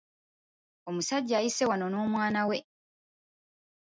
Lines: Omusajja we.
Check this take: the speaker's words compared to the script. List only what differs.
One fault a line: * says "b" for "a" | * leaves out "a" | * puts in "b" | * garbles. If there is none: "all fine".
* puts in "ayise wano n'omwana"